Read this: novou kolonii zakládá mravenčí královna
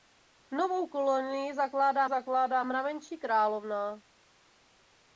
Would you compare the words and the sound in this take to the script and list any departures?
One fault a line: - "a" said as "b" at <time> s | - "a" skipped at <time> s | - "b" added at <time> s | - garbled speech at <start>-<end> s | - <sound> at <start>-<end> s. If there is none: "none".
- "zakládá" added at 2.1 s